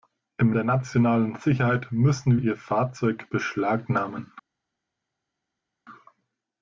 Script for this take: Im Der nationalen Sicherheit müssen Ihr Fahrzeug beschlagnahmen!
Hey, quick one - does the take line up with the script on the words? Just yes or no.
yes